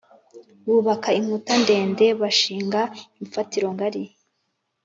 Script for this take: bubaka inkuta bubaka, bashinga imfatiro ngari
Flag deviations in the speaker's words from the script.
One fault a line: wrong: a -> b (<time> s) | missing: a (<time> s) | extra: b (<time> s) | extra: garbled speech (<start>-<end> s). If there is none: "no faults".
wrong: bubaka -> ndende (1.6 s)